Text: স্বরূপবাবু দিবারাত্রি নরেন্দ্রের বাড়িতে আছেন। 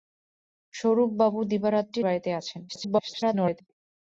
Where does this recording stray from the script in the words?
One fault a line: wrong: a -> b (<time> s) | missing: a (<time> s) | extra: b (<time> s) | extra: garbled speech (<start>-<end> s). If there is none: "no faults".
missing: নরেন্দ্রের (2.0 s)
extra: garbled speech (2.7-3.6 s)